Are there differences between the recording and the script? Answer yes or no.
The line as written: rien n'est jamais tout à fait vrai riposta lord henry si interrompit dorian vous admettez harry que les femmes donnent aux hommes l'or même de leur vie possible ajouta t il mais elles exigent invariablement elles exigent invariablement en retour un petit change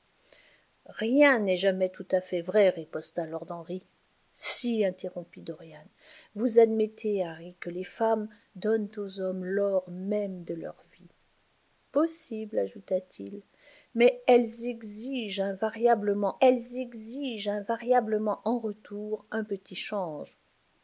no